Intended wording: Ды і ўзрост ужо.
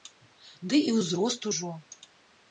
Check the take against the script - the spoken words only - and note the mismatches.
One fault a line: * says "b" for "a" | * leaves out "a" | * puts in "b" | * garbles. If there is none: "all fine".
all fine